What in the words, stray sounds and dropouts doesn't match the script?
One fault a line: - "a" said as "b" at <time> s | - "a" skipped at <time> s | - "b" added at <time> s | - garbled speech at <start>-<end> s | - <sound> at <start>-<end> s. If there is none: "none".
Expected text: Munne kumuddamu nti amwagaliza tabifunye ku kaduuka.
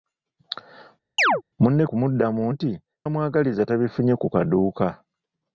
- chirp at 1.2-1.4 s